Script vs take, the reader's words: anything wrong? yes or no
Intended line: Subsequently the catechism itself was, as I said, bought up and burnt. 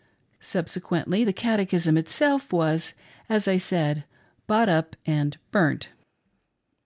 no